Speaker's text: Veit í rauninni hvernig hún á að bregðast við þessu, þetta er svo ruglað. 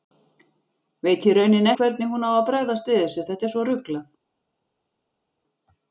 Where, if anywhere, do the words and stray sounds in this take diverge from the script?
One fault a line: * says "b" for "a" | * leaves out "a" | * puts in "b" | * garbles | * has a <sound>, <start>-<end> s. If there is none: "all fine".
all fine